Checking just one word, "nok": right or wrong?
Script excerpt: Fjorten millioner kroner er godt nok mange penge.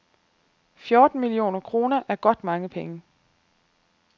wrong